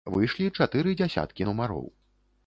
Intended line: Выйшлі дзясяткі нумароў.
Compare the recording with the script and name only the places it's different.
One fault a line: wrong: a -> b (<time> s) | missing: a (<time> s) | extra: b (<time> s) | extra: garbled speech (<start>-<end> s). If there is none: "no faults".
extra: чатыры (0.6 s)